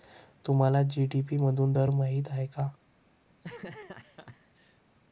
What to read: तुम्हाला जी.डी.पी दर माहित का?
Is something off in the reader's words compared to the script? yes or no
yes